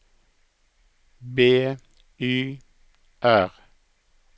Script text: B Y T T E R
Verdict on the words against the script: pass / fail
fail